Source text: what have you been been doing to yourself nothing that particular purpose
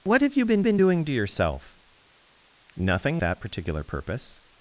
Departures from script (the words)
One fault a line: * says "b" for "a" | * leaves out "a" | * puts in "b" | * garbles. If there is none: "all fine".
all fine